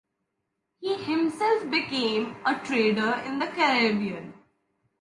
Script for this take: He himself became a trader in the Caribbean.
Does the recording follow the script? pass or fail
pass